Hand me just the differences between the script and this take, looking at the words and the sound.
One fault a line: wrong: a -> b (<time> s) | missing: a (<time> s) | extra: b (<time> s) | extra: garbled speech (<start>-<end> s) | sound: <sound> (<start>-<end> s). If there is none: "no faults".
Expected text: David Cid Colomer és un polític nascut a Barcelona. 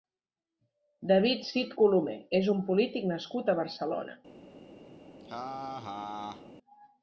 sound: laugh (5.2-6.5 s)